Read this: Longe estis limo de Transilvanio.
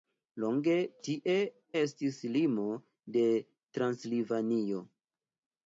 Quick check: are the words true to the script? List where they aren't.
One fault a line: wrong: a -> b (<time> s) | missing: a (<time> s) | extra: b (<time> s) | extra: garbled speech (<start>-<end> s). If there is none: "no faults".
extra: tie (1.1 s)